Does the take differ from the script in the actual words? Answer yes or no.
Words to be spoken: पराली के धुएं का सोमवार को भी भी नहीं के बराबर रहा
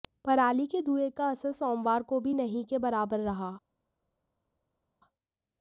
yes